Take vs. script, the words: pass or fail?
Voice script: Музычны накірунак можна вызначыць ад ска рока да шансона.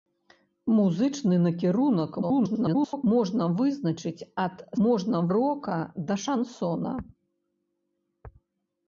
fail